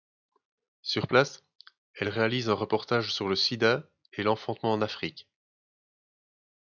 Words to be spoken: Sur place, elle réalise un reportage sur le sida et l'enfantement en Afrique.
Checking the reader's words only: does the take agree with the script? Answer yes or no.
yes